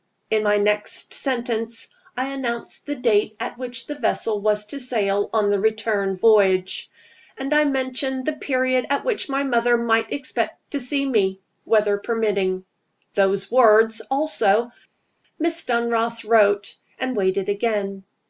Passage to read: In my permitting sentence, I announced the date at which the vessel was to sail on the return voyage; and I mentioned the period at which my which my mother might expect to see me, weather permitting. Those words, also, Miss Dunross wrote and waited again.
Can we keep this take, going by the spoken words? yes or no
no